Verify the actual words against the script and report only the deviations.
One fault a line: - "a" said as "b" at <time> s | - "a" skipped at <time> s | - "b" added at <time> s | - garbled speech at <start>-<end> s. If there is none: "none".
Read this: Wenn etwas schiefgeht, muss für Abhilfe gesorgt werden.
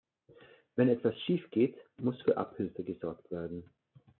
none